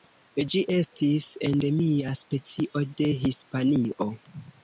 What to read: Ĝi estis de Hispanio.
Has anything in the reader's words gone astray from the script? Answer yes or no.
yes